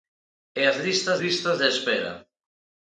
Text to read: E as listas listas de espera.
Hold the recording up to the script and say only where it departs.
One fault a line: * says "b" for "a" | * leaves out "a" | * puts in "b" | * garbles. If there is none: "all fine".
all fine